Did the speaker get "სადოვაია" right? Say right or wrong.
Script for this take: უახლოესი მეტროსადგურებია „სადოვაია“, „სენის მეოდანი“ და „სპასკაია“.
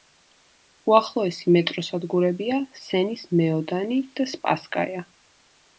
wrong